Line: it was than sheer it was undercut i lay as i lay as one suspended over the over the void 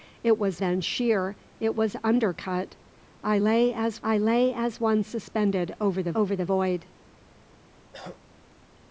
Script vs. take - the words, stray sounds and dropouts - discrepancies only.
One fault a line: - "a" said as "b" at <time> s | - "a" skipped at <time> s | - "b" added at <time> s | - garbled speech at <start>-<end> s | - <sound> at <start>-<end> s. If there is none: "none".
- cough at 7.9-8.2 s